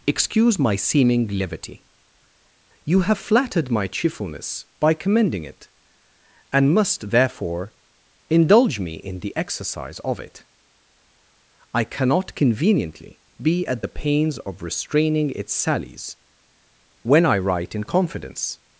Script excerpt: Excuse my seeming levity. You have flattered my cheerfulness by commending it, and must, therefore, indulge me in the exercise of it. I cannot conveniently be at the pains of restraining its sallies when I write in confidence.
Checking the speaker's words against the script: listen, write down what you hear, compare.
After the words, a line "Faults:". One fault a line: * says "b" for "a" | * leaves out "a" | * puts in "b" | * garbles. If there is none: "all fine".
Excuse my seeming levity. You have flattered my cheerfulness by commending it, and must, therefore, indulge me in the exercise of it. I cannot conveniently be at the pains of restraining its sallies when I write in confidence.
Faults:
all fine